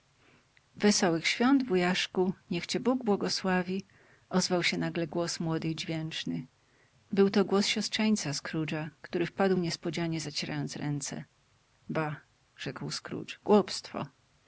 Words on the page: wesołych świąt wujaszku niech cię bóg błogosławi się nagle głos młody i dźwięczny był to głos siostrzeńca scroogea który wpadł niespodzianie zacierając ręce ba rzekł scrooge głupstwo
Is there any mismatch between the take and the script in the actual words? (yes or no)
yes